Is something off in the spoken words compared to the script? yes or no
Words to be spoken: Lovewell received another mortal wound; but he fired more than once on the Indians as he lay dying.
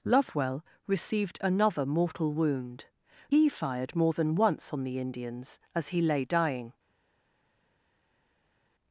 yes